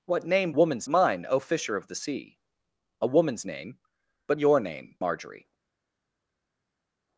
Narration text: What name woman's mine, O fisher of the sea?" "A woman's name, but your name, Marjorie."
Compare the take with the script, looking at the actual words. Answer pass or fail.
pass